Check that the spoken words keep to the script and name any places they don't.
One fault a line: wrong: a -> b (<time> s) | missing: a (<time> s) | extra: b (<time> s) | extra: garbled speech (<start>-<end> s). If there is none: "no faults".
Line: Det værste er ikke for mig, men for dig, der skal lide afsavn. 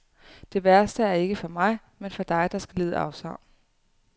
no faults